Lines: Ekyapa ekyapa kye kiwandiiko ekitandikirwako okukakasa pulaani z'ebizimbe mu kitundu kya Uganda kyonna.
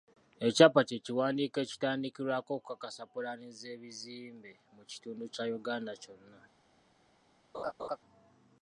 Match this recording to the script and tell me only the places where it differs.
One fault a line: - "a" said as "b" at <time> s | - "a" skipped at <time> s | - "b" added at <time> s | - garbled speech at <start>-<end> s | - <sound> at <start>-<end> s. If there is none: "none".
- "ekyapa" skipped at 0.8 s
- laugh at 7.5-8.0 s